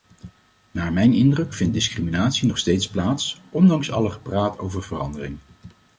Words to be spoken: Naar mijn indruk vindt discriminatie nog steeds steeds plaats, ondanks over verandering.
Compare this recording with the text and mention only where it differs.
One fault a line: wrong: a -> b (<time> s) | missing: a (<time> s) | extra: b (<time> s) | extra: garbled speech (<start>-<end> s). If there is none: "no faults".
missing: steeds (2.9 s)
extra: alle gepraat (3.9 s)